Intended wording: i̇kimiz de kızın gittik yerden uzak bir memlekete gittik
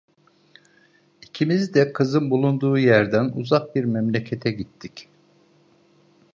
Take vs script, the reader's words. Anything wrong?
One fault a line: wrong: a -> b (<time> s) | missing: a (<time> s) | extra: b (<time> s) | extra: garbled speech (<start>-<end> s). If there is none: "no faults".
wrong: gittik -> bulunduğu (2.3 s)